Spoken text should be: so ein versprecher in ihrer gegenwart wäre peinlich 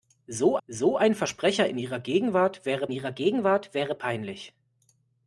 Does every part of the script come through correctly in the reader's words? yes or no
no